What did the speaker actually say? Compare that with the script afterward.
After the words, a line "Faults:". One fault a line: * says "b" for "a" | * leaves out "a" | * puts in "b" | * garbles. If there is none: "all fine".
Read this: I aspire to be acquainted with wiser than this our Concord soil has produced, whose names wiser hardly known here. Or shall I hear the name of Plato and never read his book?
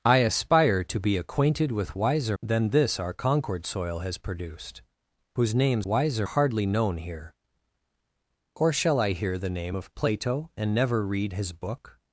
I aspire to be acquainted with wiser than this our Concord soil has produced, whose names wiser hardly known here. Or shall I hear the name of Plato and never read his book?
Faults:
all fine